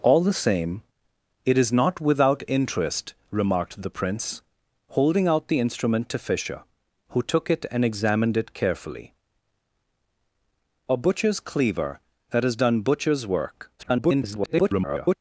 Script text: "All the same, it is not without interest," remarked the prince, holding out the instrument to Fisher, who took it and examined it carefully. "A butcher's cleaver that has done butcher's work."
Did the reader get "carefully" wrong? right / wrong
right